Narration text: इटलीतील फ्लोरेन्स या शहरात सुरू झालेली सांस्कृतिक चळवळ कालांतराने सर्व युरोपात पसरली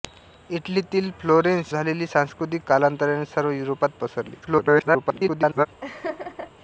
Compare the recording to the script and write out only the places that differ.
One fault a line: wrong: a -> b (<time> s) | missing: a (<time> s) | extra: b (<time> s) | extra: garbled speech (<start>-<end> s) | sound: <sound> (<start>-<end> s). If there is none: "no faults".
missing: या शहरात सुरू (1.7 s)
missing: चळवळ (2.6 s)
extra: garbled speech (4.4-5.7 s)
sound: laugh (5.8-6.5 s)